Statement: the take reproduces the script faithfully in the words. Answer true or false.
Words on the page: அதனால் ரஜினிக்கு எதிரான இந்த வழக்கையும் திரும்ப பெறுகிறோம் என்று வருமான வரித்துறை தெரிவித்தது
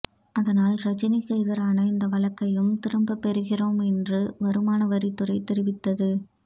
true